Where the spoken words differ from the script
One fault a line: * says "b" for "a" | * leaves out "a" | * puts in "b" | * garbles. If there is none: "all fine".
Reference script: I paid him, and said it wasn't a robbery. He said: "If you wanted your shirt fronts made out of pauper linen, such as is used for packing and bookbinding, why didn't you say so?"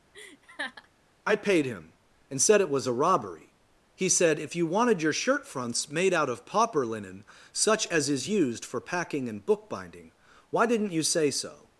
* says "was" for "wasn't"